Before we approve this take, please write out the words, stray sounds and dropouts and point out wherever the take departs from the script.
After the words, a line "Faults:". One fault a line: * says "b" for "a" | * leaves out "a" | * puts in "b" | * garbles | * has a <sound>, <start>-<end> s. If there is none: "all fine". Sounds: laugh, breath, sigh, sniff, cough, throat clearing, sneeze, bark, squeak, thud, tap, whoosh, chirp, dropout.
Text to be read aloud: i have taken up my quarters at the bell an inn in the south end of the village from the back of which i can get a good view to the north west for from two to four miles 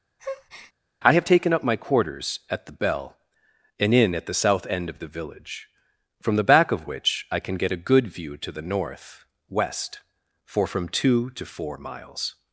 i have taken up my quarters at the bell an inn at the south end of the village from the back of which i can get a good view to the north west for from two to four miles
Faults:
* has a breath, 0.2-0.7 s
* says "at" for "in"